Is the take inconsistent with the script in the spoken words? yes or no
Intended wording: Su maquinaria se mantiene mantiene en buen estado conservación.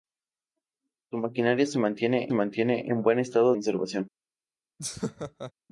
no